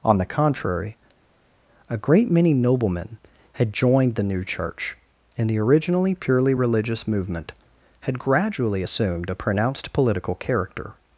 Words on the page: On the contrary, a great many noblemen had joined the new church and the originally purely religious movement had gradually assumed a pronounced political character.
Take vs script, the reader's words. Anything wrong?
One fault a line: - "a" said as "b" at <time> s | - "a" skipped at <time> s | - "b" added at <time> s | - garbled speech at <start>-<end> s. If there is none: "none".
none